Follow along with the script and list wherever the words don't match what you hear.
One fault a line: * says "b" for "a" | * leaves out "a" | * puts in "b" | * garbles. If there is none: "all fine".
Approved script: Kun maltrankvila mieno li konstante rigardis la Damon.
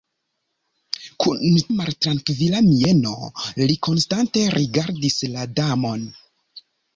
all fine